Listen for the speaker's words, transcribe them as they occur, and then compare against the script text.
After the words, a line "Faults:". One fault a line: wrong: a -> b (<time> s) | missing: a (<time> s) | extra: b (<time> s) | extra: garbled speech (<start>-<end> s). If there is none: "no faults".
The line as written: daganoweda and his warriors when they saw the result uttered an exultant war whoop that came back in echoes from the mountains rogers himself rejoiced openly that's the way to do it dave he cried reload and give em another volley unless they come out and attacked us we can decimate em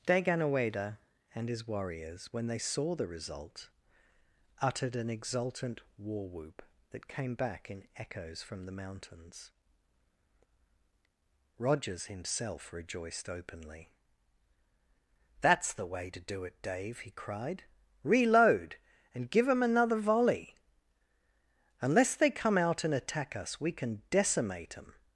daganoweda and his warriors when they saw the result uttered an exultant war whoop that came back in echoes from the mountains rogers himself rejoiced openly that's the way to do it dave he cried reload and give em another volley unless they come out and attack us we can decimate em
Faults:
wrong: attacked -> attack (22.9 s)